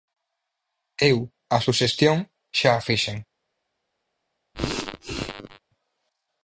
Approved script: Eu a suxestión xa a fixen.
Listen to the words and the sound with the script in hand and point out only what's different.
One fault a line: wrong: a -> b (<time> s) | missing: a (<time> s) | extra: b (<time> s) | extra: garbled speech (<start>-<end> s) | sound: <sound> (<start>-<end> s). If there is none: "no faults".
sound: sneeze (4.5-5.6 s)